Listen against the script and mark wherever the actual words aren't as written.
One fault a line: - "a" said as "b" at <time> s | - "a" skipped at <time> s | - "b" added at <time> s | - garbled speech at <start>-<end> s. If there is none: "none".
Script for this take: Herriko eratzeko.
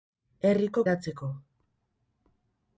none